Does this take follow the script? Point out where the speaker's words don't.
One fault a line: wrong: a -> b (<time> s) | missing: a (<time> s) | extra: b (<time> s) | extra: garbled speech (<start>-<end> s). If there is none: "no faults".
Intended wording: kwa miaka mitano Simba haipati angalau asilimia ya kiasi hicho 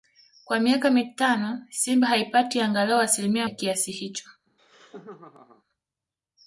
no faults